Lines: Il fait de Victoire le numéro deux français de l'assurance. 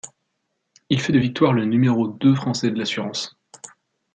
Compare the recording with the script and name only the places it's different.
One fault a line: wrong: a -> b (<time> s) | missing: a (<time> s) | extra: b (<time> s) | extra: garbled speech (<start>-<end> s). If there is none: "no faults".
no faults